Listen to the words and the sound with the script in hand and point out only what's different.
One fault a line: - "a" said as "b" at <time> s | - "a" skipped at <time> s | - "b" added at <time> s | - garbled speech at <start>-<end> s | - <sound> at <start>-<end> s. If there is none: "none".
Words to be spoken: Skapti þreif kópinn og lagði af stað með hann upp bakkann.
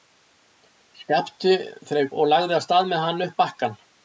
- "kópinn" skipped at 2.1 s